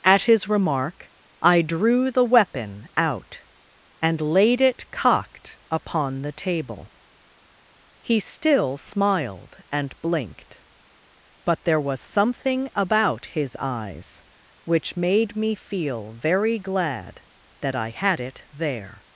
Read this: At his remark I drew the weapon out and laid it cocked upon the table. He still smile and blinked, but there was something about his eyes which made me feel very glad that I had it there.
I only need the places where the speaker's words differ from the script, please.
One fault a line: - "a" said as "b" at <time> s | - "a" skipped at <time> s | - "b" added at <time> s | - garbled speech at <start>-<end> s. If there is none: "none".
- "smile" said as "smiled" at 8.8 s